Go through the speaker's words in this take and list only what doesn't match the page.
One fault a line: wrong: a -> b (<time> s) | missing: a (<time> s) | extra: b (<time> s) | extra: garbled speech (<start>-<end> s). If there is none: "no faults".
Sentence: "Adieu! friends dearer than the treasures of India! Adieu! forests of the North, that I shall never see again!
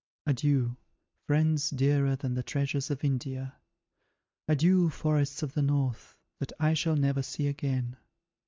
no faults